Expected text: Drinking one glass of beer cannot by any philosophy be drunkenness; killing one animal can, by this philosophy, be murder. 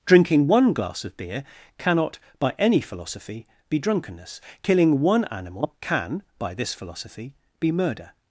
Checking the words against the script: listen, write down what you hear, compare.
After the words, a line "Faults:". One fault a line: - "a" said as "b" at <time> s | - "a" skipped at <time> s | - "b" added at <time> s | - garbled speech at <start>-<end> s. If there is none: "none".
Drinking one glass of beer cannot by any philosophy be drunkenness; killing one animal can, by this philosophy, be murder.
Faults:
none